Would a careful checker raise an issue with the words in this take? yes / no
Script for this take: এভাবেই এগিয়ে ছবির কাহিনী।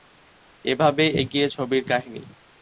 no